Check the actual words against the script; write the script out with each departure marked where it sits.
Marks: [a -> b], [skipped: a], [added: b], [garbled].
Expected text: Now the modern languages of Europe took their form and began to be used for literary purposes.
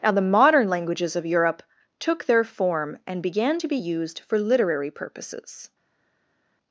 Now the modern languages of Europe took their form and began to be used for literary purposes.